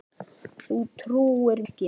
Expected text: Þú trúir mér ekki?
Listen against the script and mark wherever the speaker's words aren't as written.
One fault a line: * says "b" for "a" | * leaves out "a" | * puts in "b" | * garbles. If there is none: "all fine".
* leaves out "mér"